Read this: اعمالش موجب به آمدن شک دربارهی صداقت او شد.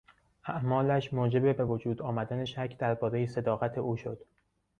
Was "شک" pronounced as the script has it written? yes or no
yes